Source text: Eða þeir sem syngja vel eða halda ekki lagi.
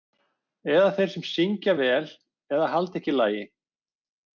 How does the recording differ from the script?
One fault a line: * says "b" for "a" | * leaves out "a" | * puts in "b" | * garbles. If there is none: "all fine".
all fine